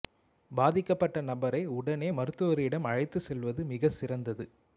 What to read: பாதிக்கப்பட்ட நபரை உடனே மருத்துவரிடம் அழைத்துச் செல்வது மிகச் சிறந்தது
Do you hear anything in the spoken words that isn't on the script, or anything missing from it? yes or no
no